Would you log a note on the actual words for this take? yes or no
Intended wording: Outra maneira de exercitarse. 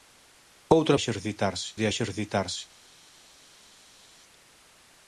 yes